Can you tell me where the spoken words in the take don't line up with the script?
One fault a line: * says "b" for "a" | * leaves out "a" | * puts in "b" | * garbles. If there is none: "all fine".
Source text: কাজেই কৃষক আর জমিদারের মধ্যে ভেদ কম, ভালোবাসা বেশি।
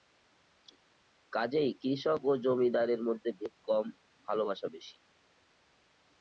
* says "ও" for "আর"